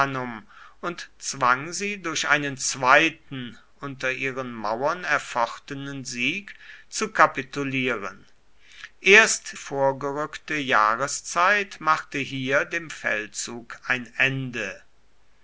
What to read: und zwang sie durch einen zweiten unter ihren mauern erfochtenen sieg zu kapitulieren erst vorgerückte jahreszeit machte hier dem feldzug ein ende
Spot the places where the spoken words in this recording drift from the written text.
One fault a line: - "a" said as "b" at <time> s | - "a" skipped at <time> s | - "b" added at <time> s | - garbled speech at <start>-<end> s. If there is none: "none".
none